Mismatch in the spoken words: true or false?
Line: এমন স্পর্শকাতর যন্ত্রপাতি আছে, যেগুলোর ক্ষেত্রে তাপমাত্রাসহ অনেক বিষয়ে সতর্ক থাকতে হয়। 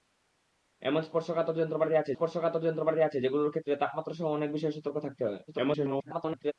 true